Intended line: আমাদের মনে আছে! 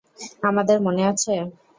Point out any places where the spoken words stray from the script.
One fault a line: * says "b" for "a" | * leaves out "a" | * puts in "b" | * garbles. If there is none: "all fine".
all fine